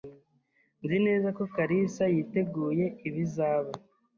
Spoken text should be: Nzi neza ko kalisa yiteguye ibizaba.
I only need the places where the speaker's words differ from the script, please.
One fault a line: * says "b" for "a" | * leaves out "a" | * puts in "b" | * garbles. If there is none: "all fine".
all fine